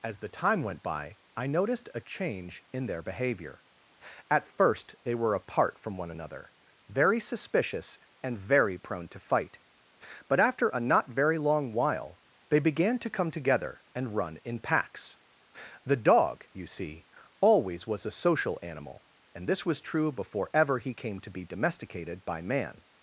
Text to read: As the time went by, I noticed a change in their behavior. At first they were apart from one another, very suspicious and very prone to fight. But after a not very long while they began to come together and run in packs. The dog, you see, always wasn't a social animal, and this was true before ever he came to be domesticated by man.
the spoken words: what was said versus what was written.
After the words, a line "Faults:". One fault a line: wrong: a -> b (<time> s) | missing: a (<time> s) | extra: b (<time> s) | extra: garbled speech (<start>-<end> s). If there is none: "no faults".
As the time went by, I noticed a change in their behavior. At first they were apart from one another, very suspicious and very prone to fight. But after a not very long while they began to come together and run in packs. The dog, you see, always was a social animal, and this was true before ever he came to be domesticated by man.
Faults:
wrong: wasn't -> was (17.8 s)